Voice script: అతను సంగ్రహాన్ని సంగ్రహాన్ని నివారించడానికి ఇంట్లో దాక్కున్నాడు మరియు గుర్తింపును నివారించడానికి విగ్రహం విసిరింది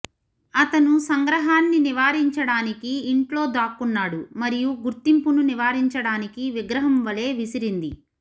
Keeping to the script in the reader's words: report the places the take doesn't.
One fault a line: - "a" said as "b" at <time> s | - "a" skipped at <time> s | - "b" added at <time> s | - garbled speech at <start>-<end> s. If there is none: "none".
- "సంగ్రహాన్ని" skipped at 1.8 s
- "వలె" added at 7.0 s